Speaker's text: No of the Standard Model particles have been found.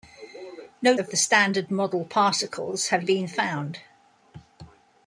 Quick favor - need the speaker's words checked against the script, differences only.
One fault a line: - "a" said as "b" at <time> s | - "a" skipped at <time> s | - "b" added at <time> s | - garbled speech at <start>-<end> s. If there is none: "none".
none